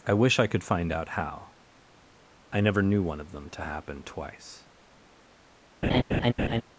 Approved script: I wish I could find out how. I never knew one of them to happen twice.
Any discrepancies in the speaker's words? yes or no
no